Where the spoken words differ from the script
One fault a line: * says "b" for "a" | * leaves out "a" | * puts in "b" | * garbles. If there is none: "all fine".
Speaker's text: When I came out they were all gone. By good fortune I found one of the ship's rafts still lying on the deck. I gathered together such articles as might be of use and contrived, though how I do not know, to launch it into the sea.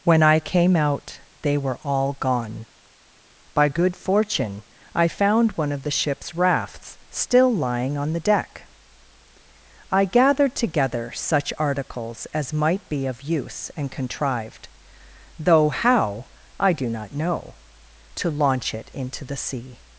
all fine